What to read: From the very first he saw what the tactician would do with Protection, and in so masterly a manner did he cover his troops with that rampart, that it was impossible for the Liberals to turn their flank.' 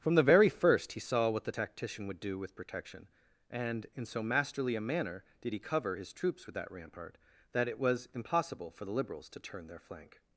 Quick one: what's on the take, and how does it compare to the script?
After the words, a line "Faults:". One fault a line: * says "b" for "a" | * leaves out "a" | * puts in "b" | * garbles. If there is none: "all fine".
From the very first he saw what the tactician would do with Protection, and in so masterly a manner did he cover his troops with that rampart, that it was impossible for the Liberals to turn their flank.'
Faults:
all fine